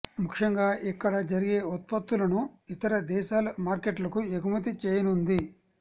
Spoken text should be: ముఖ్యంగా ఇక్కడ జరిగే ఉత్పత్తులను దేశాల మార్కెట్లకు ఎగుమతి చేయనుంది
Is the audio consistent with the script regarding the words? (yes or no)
no